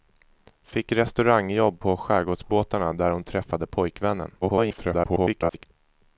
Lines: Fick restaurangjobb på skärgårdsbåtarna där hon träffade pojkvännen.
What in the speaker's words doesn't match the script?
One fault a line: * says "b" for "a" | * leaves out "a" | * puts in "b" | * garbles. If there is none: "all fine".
* garbles